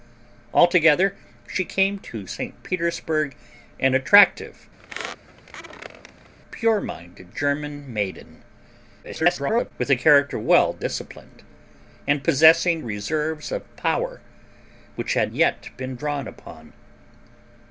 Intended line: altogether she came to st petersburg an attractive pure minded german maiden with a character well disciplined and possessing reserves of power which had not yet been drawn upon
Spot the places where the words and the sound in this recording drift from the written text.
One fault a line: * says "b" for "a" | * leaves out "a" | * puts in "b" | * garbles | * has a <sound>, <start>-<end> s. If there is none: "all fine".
* has a squeak, 4.8-6.3 s
* garbles
* leaves out "not"